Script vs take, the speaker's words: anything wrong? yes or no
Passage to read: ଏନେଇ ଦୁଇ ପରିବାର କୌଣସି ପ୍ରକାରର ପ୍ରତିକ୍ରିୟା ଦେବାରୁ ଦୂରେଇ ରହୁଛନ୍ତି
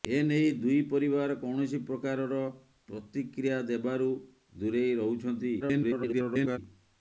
yes